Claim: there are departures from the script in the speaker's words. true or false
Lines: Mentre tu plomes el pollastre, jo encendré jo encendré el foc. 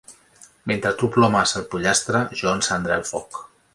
true